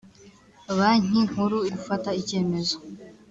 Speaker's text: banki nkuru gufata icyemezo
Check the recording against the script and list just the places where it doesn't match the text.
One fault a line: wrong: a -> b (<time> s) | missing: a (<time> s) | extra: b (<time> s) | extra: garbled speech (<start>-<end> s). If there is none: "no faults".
no faults